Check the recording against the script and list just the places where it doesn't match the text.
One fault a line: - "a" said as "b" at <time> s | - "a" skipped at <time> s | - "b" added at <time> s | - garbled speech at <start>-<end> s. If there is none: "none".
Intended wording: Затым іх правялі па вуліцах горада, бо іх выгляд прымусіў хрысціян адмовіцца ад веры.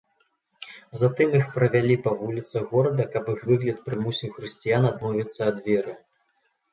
- "бо" said as "каб" at 3.1 s